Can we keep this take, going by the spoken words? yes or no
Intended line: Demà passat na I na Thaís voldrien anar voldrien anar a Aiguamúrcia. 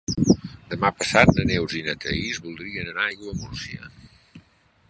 no